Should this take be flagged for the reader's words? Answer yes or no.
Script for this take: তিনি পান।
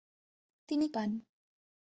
no